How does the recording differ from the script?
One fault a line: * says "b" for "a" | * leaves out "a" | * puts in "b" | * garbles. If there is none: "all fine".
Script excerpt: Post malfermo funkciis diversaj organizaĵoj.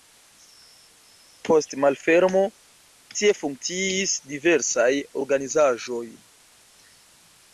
* puts in "tie"